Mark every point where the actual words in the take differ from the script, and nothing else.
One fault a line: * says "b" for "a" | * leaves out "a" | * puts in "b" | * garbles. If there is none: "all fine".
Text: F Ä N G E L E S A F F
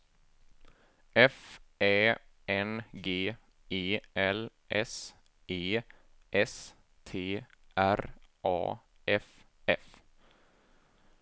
* puts in "S"
* puts in "T R"